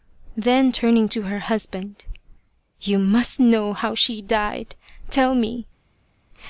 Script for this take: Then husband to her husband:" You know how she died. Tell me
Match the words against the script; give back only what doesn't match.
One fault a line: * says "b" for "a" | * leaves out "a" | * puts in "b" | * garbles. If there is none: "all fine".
* says "turning" for "husband"
* puts in "must"